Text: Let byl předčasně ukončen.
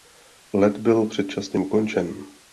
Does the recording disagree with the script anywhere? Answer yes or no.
no